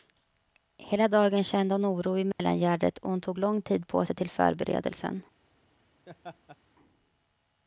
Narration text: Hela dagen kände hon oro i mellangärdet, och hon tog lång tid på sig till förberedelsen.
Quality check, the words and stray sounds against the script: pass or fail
fail